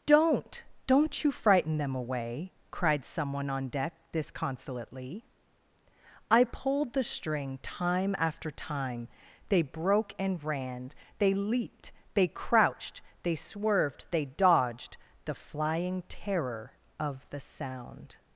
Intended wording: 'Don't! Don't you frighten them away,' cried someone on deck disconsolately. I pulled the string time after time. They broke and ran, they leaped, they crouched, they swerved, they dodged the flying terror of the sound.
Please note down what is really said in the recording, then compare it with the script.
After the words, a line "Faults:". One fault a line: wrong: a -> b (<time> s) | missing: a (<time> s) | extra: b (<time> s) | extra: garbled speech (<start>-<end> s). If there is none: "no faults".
'Don't! Don't you frighten them away,' cried someone on deck disconsolately. I pulled the string time after time. They broke and ran, they leaped, they crouched, they swerved, they dodged the flying terror of the sound.
Faults:
no faults